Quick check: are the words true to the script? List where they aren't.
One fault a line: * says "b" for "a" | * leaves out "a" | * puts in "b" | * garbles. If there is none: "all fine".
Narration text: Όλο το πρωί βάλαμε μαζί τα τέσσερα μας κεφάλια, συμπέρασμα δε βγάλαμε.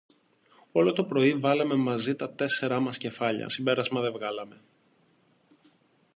all fine